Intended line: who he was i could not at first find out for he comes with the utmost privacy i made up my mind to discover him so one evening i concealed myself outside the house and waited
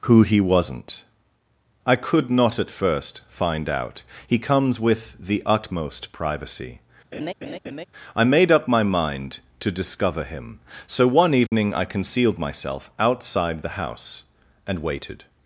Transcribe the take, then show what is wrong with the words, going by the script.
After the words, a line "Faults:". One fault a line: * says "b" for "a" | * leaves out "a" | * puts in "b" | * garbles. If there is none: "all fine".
who he wasn't i could not at first find out he comes with the utmost privacy i made up my mind to discover him so one evening i concealed myself outside the house and waited
Faults:
* says "wasn't" for "was"
* leaves out "for"